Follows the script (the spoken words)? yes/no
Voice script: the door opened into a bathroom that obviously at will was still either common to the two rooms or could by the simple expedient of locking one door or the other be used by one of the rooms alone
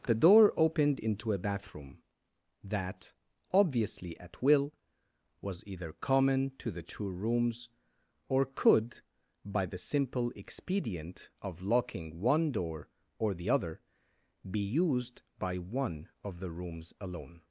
no